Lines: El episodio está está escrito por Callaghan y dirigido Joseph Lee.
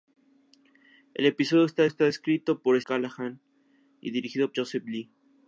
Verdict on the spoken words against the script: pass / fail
pass